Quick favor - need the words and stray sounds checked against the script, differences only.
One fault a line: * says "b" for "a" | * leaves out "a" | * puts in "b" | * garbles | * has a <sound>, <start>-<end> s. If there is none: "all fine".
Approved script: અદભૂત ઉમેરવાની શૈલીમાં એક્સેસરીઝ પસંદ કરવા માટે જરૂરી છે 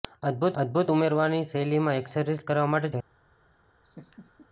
* puts in "અદભૂત"
* leaves out "પસંદ"
* leaves out "જરૂરી"
* has a laugh, 3.8-4.5 s